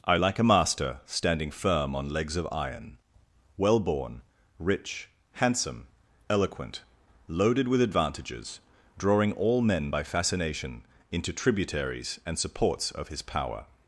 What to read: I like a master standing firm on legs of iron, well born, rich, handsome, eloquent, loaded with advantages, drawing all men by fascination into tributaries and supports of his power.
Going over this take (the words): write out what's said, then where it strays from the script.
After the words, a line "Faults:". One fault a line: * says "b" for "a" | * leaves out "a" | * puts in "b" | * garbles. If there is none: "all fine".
I like a master standing firm on legs of iron, well born, rich, handsome, eloquent, loaded with advantages, drawing all men by fascination into tributaries and supports of his power.
Faults:
all fine